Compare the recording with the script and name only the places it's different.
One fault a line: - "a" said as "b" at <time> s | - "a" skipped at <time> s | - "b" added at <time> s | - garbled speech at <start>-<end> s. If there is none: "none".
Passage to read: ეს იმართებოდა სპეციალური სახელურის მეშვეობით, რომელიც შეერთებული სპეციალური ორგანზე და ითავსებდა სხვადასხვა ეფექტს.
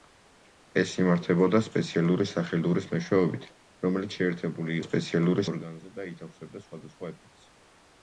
none